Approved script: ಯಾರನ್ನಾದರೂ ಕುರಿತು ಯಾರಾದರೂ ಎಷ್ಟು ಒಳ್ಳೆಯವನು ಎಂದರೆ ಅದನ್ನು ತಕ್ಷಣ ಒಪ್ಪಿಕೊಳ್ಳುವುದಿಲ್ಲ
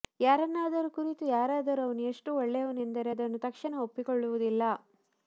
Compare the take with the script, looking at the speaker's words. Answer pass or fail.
fail